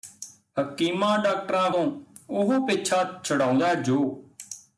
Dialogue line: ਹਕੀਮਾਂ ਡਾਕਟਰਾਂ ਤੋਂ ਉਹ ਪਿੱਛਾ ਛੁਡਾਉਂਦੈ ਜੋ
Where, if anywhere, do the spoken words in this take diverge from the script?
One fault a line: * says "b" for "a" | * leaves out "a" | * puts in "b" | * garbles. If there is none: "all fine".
all fine